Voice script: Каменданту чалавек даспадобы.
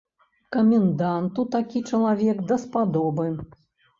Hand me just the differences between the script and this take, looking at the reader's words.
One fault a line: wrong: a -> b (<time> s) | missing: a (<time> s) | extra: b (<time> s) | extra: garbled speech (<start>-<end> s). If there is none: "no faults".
extra: такі (1.6 s)